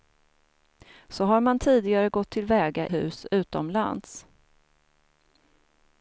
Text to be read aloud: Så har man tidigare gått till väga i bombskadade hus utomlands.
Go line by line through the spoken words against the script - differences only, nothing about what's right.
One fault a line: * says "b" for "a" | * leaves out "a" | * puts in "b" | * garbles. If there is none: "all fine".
* leaves out "i bombskadade"